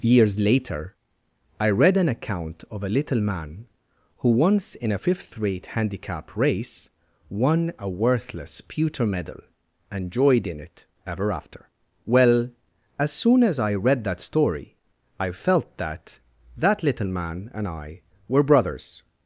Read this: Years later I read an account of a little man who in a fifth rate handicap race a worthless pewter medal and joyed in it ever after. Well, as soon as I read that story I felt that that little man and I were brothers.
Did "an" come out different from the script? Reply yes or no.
no